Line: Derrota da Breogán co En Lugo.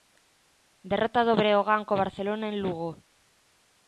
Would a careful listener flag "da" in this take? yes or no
yes